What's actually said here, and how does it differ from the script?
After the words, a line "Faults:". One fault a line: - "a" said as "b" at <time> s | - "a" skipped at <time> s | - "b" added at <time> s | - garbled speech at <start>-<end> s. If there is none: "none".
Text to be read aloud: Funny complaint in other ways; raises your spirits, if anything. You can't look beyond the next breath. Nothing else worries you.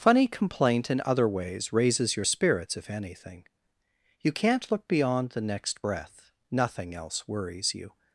Funny complaint in other ways; raises your spirits, if anything. You can't look beyond the next breath. Nothing else worries you.
Faults:
none